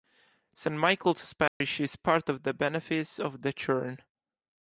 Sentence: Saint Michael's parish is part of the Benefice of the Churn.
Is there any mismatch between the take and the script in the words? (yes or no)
no